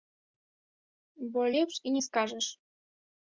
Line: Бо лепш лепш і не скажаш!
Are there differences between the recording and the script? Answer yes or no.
yes